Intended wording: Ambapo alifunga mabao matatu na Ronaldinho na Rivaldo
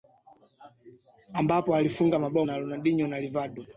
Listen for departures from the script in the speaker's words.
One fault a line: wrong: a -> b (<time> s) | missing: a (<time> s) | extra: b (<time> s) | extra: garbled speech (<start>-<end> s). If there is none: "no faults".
missing: matatu (2.5 s)